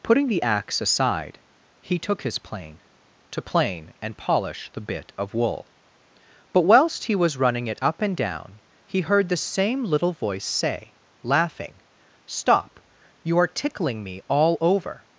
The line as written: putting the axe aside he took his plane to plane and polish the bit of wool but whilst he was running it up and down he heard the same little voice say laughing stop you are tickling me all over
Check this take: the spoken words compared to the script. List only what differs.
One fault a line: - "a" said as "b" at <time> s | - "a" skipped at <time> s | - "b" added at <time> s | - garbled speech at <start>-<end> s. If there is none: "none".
none